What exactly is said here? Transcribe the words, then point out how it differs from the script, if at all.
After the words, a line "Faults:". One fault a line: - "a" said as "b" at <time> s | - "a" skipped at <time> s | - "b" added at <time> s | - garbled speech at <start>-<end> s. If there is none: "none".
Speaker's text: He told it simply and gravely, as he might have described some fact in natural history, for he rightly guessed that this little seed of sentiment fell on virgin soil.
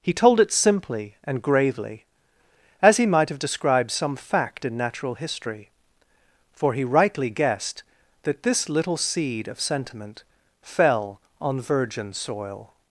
He told it simply and gravely, as he might have described some fact in natural history, for he rightly guessed that this little seed of sentiment fell on virgin soil.
Faults:
none